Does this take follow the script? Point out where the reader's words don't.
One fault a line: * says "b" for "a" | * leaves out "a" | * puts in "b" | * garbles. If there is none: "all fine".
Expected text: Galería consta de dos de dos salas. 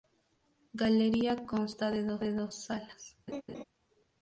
all fine